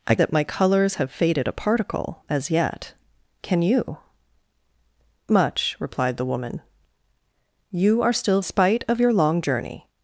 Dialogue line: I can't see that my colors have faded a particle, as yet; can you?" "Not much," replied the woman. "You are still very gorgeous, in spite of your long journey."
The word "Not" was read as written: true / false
false